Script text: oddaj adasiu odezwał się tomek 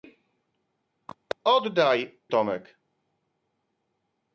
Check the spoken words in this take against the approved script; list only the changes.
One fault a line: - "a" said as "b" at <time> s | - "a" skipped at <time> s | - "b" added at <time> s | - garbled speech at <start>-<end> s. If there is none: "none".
- "adasiu odezwał się" skipped at 2.2 s